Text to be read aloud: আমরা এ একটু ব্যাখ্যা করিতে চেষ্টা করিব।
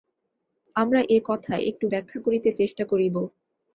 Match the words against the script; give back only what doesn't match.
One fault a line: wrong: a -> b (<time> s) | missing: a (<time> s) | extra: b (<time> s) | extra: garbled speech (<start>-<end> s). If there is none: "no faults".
extra: কথা (1.2 s)